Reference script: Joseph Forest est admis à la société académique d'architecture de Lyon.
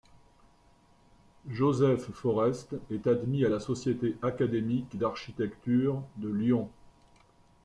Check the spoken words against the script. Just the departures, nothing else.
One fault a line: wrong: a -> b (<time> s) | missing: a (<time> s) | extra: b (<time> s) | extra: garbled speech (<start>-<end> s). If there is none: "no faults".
no faults